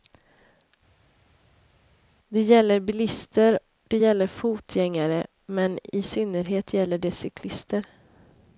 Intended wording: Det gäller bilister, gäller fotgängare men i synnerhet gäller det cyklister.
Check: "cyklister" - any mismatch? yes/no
no